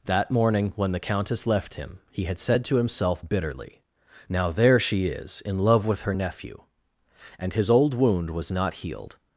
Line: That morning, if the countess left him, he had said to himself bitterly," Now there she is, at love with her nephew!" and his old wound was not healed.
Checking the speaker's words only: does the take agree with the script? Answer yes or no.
no